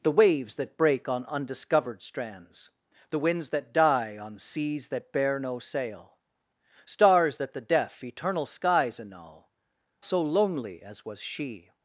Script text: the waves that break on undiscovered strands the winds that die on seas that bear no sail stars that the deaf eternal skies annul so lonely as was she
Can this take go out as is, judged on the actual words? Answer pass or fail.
pass